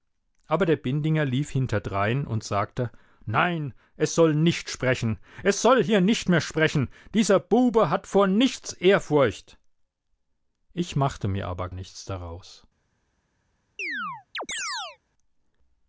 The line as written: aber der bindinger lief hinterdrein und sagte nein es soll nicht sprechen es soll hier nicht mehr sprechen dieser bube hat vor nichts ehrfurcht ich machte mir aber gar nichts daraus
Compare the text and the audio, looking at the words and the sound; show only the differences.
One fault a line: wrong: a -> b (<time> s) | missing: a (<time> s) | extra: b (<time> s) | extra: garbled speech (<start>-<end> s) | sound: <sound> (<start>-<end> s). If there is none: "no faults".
missing: gar (11.7 s)
sound: chirp (13.8-15.0 s)